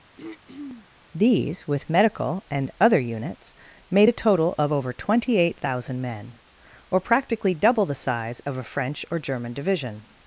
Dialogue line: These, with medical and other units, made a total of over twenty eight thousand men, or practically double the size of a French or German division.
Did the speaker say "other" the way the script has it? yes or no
yes